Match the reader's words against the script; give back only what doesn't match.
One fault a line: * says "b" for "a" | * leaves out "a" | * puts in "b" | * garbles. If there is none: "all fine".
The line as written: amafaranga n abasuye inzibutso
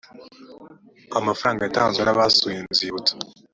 * puts in "yatanzwe"